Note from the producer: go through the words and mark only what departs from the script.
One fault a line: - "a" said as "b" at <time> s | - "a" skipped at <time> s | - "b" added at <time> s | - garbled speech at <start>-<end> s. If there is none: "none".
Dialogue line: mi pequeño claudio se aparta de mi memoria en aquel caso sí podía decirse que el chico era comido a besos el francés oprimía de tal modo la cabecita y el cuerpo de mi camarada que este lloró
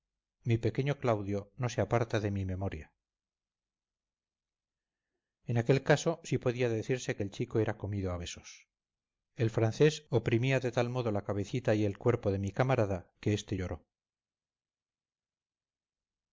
- "no" added at 1.6 s